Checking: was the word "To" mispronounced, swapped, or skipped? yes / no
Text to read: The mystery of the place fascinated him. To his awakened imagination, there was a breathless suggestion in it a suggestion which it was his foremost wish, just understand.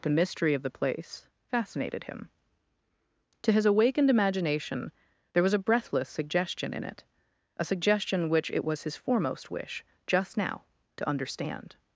no